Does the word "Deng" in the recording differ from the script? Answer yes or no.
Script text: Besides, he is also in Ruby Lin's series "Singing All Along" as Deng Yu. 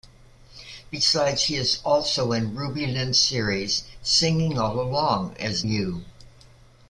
yes